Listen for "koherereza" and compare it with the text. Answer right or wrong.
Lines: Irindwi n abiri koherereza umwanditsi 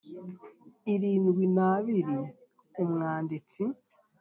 wrong